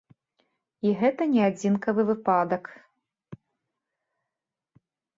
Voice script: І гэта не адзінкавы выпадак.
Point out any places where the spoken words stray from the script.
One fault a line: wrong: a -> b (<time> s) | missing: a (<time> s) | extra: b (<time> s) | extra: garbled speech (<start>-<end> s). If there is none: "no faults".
no faults